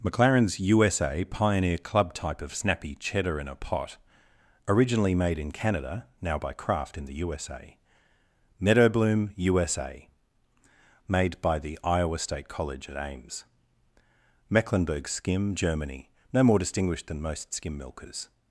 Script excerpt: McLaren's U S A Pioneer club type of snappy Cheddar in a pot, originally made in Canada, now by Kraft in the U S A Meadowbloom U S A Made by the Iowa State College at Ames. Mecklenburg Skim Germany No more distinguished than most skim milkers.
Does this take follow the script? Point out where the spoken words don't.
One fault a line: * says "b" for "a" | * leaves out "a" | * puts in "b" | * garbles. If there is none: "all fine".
all fine